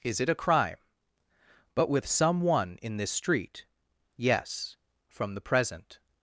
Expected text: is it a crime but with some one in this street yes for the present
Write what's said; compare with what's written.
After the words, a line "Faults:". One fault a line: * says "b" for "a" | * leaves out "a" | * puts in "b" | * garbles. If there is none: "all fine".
is it a crime but with some one in this street yes from the present
Faults:
* says "from" for "for"